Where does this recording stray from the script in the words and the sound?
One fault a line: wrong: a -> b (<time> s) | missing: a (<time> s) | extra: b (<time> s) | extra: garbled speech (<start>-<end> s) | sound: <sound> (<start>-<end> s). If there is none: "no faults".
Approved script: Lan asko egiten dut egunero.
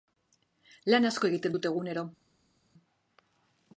no faults